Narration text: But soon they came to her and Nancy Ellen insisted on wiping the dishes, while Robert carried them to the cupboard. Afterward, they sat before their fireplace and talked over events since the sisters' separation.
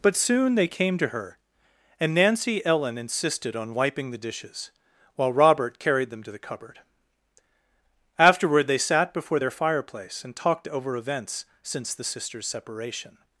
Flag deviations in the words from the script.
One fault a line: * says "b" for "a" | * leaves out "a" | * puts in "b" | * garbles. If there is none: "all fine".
all fine